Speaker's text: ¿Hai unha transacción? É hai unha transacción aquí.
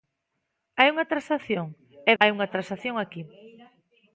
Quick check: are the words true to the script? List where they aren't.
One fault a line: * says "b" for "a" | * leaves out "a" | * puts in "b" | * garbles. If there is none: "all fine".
all fine